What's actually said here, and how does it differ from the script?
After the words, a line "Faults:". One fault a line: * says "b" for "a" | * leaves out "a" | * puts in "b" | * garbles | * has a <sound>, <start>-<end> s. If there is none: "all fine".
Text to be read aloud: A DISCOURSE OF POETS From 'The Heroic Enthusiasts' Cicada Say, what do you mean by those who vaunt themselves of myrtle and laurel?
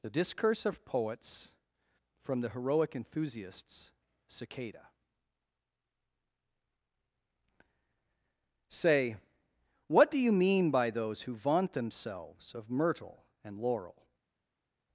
The DISCOURSE OF POETS From 'The Heroic Enthusiasts' Cicada Say, what do you mean by those who vaunt themselves of myrtle and laurel?
Faults:
* says "The" for "A"